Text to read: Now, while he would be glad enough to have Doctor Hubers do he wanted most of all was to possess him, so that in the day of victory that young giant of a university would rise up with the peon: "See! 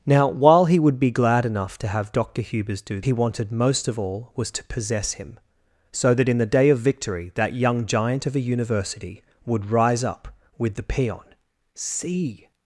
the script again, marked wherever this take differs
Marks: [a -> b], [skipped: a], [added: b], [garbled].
Now, while he would be glad enough to have Doctor Hubers do he wanted most of all was to possess him, so that in the day of victory that young giant of a university would rise up with the peon: "See!